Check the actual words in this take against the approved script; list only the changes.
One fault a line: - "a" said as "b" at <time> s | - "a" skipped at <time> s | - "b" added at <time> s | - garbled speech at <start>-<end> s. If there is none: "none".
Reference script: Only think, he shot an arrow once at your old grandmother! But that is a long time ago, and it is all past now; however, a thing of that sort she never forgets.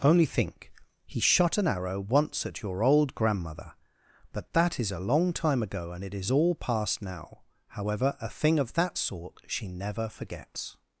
none